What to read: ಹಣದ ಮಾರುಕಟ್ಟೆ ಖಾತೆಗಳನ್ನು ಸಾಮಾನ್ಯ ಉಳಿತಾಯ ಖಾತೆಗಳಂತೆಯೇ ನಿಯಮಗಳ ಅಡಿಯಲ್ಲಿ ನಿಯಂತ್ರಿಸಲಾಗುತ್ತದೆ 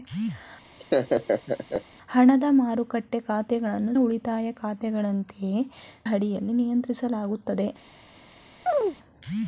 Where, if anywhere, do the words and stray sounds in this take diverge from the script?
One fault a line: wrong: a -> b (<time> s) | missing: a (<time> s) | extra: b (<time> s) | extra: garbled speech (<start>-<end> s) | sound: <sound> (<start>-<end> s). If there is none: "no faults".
sound: laugh (0.8-1.8 s)
missing: ಸಾಮಾನ್ಯ (3.9 s)
missing: ನಿಯಮಗಳ (5.6 s)
sound: chirp (8.7-9.0 s)